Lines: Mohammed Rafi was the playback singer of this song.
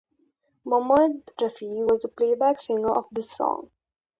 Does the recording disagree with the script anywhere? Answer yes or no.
no